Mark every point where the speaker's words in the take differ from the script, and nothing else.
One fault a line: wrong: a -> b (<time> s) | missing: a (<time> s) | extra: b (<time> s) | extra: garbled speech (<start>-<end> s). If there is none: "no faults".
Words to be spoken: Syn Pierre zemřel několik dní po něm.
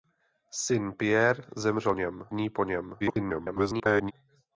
wrong: několik -> něm (1.9 s)
extra: garbled speech (3.0-4.1 s)